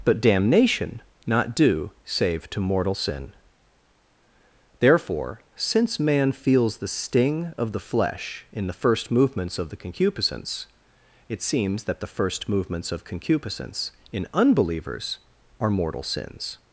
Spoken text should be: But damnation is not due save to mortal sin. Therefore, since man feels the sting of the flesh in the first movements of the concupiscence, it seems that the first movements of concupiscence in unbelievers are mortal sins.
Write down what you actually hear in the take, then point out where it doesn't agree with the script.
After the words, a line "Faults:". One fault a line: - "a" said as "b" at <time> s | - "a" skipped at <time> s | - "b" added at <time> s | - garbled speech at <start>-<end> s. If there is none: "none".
But damnation not due save to mortal sin. Therefore, since man feels the sting of the flesh in the first movements of the concupiscence, it seems that the first movements of concupiscence in unbelievers are mortal sins.
Faults:
- "is" skipped at 1.0 s